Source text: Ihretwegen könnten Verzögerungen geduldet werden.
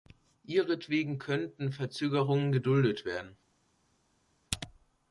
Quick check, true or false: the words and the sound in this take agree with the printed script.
true